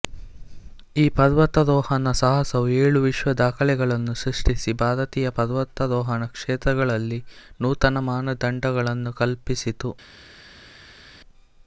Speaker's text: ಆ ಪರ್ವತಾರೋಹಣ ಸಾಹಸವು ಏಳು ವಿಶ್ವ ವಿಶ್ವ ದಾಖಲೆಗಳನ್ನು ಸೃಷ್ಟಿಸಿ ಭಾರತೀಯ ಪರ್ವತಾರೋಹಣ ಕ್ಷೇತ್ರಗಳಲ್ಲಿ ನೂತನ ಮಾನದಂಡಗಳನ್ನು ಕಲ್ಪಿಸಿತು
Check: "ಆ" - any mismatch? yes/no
yes